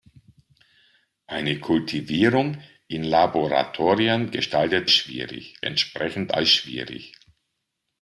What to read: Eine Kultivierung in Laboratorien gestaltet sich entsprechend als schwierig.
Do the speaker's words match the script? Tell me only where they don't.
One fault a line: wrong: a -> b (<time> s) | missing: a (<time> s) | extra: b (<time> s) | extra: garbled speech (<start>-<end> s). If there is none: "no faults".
wrong: sich -> schwierig (4.9 s)